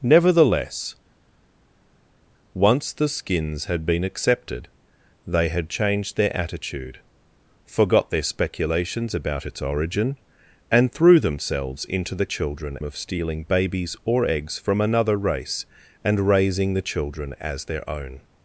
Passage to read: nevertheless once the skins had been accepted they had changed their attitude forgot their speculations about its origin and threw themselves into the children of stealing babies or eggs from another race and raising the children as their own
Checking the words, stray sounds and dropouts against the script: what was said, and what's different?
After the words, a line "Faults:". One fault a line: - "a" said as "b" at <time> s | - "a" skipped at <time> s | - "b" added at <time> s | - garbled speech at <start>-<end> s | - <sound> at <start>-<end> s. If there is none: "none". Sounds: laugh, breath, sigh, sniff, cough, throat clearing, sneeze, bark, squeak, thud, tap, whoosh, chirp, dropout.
nevertheless once the skins had been accepted they had changed their attitude forgot their speculations about its origin and threw themselves into the children of stealing babies or eggs from another race and raising the children as their own
Faults:
none